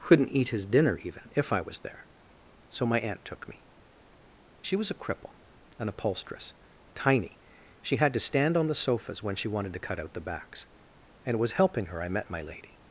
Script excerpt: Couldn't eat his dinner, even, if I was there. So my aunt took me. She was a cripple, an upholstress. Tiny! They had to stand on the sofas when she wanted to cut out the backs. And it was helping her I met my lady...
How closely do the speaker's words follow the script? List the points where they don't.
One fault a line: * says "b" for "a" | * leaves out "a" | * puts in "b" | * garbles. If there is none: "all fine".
* says "She" for "They"